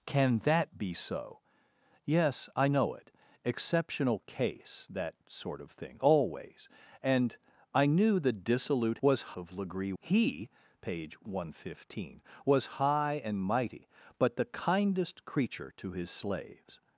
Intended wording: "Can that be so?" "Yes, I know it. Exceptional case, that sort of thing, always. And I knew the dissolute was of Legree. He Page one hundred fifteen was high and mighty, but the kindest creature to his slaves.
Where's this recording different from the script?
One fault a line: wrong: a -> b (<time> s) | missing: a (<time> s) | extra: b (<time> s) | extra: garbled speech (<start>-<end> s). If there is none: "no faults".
no faults